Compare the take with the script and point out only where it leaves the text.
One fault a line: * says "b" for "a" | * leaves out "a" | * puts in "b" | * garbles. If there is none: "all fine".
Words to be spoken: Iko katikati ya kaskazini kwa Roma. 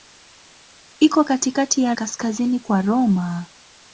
all fine